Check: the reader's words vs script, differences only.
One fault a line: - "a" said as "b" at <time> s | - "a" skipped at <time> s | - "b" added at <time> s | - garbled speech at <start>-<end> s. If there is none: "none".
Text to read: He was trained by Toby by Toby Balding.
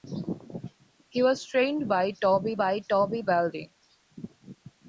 none